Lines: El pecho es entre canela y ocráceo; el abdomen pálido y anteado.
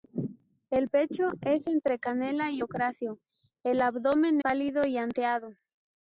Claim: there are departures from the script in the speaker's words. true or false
false